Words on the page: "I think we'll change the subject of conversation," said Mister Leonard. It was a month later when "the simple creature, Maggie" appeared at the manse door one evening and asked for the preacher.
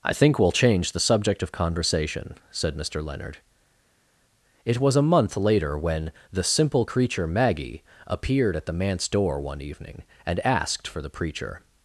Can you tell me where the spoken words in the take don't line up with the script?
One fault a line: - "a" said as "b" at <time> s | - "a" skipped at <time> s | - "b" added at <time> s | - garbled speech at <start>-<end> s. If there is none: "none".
none